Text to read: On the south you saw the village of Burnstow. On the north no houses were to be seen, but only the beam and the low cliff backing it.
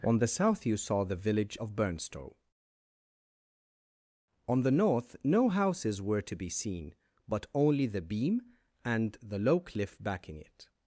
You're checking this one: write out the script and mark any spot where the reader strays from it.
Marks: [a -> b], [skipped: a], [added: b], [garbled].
On the south you saw the village of Burnstow. On the north no houses were to be seen, but only the beam and the low cliff backing it.